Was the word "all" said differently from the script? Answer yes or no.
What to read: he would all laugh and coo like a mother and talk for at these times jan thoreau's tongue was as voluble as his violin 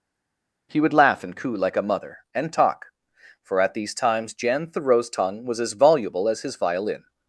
yes